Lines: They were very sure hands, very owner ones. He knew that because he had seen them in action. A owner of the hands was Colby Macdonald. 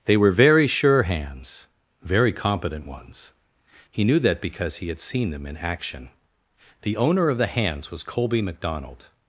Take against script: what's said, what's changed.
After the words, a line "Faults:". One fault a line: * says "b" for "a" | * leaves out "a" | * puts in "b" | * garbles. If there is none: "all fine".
They were very sure hands, very competent ones. He knew that because he had seen them in action. The owner of the hands was Colby Macdonald.
Faults:
* says "competent" for "owner"
* says "The" for "A"